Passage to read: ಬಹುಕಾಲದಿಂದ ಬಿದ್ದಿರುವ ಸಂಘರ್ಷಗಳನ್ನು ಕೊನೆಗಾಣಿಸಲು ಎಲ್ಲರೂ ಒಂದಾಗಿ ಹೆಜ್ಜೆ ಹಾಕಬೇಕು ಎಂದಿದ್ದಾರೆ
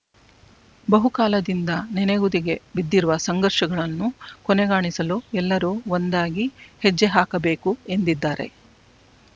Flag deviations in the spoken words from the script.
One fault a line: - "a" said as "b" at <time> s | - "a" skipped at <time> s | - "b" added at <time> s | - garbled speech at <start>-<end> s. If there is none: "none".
- "ನೆನೆಗುದಿಗೆ" added at 1.9 s